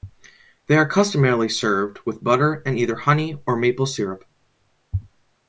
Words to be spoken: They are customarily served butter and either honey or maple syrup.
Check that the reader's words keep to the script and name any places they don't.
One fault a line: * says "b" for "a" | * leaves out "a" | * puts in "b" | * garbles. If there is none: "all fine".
* puts in "with"